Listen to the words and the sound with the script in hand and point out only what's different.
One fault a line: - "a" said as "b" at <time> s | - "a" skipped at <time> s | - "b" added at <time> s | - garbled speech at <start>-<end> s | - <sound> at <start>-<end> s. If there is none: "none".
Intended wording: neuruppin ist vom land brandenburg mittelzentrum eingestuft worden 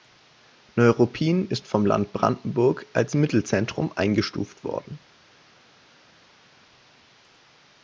- "als" added at 2.9 s